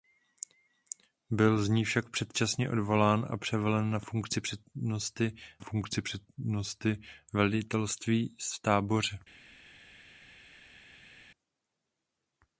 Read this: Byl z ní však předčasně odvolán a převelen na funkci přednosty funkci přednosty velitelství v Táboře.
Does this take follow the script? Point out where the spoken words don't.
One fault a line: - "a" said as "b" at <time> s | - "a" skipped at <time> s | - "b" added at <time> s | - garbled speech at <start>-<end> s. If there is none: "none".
none